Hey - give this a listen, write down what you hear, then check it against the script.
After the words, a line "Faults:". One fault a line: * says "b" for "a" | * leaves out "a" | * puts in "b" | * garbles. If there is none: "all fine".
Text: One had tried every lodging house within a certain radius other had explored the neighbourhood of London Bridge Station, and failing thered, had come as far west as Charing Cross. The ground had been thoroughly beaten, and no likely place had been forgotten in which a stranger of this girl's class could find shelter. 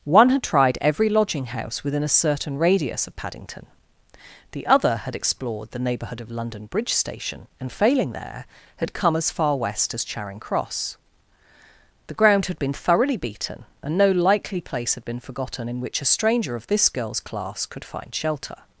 One had tried every lodging house within a certain radius of Paddington. The other had explored the neighbourhood of London Bridge Station, and failing there, had come as far west as Charing Cross. The ground had been thoroughly beaten, and no likely place had been forgotten in which a stranger of this girl's class could find shelter.
Faults:
* puts in "of Paddington The"
* says "there" for "thered"